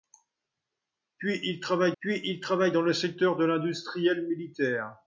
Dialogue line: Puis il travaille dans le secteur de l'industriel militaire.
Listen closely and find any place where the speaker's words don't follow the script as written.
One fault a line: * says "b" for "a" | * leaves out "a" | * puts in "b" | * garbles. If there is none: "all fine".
* puts in "puis il travaille"